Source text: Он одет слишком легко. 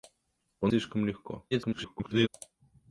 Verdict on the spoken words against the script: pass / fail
fail